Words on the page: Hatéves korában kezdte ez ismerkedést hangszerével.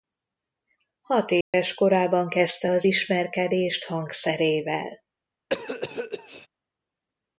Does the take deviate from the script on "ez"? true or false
true